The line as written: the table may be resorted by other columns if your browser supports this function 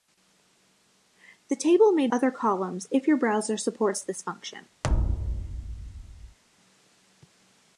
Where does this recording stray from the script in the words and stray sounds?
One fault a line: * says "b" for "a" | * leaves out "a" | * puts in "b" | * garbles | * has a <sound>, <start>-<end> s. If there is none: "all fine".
* leaves out "be resorted by"
* has a thud, 4.8-6.4 s